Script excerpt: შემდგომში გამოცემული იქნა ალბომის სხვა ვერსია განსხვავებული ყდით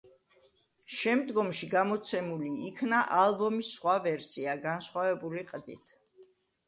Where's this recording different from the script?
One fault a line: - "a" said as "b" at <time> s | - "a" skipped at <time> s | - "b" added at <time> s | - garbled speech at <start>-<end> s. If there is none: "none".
none